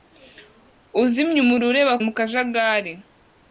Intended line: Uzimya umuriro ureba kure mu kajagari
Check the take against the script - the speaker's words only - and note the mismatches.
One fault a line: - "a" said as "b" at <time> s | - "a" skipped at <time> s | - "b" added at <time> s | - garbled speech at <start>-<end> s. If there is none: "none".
- "kure" skipped at 1.9 s